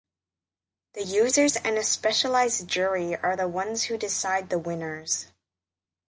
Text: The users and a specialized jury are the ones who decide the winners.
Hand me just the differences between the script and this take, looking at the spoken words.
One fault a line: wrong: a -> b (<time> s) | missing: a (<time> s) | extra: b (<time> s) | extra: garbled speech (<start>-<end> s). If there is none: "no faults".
no faults